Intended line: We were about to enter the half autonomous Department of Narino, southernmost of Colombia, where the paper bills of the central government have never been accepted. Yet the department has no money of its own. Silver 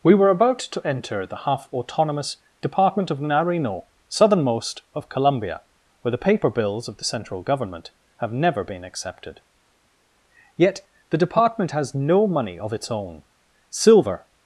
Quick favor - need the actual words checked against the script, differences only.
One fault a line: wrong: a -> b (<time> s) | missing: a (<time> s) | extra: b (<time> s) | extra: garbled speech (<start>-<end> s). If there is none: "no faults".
no faults